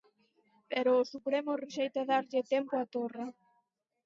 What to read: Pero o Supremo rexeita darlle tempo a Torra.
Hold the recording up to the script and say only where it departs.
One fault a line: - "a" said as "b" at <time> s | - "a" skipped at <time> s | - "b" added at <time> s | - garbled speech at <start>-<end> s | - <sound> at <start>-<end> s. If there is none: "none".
none